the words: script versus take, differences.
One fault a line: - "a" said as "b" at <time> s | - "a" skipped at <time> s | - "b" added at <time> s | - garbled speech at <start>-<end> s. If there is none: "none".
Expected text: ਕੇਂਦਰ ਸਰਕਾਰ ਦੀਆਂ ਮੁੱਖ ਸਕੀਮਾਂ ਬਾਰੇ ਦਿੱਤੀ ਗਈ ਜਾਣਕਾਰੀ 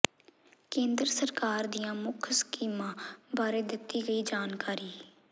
none